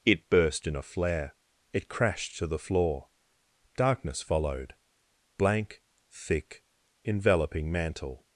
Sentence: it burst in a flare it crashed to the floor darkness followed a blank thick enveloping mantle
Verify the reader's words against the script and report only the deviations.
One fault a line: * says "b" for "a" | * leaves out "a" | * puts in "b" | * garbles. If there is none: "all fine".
* leaves out "a"